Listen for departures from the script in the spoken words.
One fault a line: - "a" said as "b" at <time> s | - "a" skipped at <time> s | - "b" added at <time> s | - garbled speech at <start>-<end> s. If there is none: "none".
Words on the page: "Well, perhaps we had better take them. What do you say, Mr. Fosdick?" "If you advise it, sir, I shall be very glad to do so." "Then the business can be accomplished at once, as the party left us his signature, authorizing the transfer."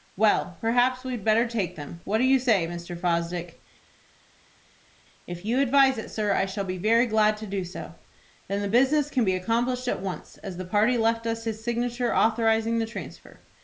none